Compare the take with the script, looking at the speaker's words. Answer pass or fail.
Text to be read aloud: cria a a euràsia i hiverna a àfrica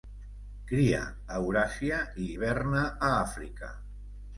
fail